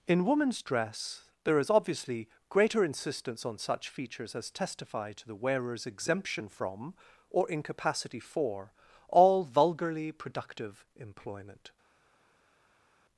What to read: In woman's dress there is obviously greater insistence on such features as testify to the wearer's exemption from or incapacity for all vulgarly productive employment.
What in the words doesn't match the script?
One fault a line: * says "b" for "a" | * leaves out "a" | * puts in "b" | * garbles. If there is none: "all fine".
all fine